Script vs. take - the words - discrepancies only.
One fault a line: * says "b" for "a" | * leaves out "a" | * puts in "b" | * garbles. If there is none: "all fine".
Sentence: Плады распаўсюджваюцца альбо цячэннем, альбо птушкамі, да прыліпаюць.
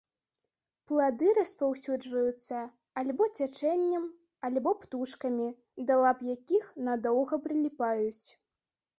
* puts in "лап якіх надоўга"